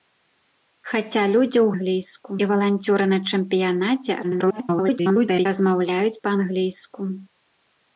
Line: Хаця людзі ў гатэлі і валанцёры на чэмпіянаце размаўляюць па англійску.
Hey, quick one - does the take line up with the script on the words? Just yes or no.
no